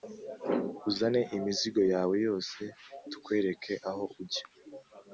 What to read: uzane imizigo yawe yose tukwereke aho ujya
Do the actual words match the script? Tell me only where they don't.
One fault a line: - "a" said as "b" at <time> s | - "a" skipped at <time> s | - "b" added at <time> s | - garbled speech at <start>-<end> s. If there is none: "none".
none